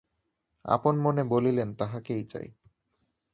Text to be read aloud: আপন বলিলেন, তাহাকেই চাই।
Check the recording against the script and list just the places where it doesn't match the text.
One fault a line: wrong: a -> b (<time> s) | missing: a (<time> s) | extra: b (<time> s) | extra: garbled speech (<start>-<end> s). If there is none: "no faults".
extra: মনে (1.0 s)